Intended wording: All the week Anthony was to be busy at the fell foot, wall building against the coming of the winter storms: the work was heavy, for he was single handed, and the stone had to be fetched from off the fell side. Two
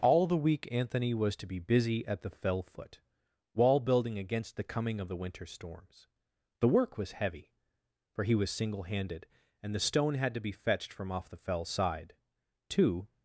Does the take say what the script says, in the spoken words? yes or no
yes